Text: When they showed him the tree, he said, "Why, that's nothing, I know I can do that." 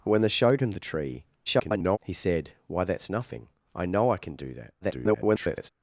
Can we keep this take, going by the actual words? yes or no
no